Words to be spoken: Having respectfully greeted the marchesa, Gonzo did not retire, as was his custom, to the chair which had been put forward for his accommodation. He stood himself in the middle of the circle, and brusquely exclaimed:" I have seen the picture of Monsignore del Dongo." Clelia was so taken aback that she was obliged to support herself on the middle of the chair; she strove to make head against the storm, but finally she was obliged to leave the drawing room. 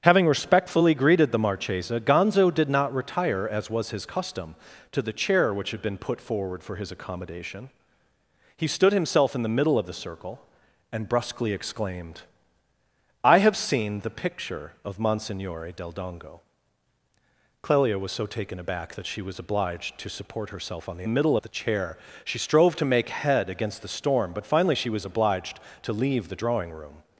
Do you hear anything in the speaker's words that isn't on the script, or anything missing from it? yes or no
no